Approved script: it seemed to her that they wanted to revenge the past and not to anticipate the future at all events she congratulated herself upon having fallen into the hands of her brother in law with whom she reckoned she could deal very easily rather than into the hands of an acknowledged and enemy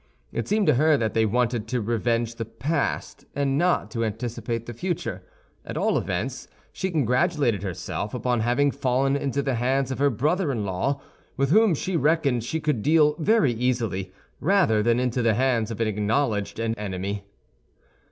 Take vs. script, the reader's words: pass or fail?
pass